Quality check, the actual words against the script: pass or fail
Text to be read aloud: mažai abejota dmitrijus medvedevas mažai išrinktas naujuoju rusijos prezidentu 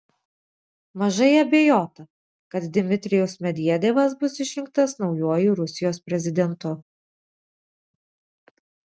fail